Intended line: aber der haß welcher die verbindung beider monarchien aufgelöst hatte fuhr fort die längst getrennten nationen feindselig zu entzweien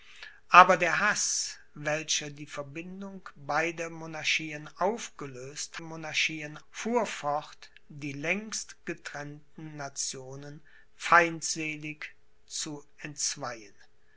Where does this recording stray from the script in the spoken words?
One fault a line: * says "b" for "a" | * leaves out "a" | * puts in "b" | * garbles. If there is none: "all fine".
* says "monarchien" for "hatte"